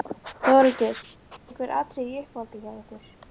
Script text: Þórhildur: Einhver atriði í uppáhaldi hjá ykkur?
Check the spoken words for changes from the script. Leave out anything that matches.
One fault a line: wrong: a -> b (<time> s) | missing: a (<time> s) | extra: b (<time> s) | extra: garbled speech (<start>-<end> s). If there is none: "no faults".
no faults